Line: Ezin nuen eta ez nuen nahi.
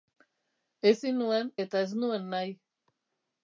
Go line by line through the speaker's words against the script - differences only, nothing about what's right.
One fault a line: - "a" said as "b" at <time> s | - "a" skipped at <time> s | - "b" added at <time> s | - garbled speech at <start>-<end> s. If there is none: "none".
none